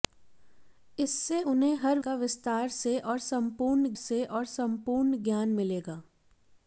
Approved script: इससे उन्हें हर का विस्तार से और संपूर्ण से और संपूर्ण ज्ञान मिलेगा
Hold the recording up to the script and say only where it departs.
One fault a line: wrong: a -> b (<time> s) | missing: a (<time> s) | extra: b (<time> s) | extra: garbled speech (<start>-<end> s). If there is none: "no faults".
no faults